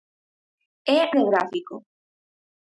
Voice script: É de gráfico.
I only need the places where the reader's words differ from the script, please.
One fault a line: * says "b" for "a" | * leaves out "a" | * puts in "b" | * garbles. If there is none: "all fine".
all fine